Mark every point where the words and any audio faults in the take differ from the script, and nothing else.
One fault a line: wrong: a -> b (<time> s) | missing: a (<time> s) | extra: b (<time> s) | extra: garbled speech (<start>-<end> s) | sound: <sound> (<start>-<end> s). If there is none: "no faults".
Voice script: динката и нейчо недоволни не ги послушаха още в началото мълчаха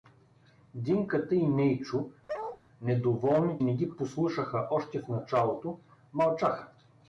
sound: bark (2.3-2.6 s)